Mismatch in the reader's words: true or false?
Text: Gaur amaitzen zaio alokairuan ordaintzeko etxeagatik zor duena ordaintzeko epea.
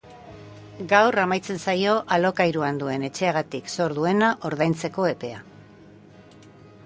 true